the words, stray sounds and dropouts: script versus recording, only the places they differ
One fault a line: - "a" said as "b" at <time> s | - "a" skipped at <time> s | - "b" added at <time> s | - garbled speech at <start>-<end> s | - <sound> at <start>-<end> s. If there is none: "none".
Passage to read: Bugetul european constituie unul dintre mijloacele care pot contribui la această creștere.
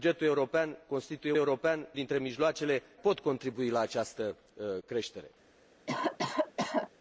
- "unul" said as "european" at 1.4 s
- "care" skipped at 2.8 s
- cough at 5.9-6.9 s